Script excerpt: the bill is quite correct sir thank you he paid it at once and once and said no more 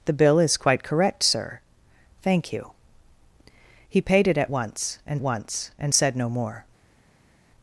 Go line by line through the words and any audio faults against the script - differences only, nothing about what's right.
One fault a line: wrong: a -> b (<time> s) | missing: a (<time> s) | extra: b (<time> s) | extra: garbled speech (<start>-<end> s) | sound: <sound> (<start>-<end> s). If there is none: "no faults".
no faults